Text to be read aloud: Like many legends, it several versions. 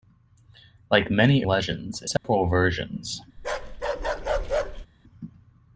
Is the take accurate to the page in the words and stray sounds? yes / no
no